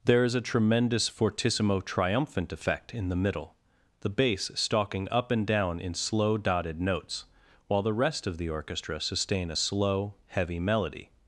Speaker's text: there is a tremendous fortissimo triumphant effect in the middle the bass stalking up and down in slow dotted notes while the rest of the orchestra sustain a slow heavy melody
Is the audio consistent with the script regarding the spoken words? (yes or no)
yes